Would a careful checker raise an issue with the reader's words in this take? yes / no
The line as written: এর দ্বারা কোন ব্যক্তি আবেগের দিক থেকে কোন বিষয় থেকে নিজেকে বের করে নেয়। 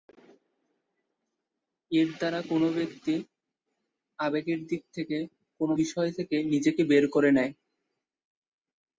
no